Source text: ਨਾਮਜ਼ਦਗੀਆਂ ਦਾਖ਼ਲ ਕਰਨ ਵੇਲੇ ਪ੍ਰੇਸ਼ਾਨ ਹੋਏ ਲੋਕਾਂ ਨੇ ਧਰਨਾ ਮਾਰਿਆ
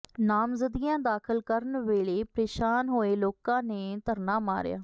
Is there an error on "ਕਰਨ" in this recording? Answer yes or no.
no